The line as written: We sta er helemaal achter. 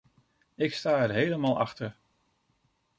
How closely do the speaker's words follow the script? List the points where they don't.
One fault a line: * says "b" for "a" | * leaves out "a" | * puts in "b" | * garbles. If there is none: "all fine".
* says "Ik" for "We"